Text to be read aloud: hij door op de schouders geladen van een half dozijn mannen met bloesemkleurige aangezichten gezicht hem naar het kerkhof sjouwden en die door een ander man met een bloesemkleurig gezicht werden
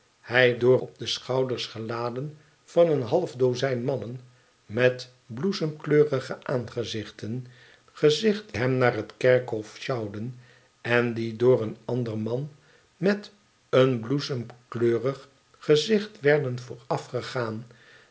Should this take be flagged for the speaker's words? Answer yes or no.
no